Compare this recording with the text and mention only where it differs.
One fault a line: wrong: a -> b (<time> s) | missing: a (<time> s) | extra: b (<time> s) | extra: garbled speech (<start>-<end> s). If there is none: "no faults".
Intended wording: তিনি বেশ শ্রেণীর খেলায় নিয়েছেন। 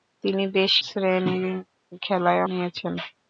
no faults